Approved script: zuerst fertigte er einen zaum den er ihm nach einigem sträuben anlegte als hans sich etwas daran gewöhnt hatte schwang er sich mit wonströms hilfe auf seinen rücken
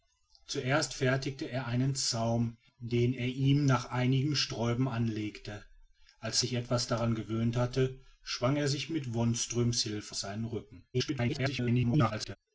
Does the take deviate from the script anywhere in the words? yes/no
yes